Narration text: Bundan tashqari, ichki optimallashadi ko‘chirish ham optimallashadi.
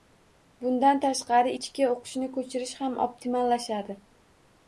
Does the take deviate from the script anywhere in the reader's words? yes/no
yes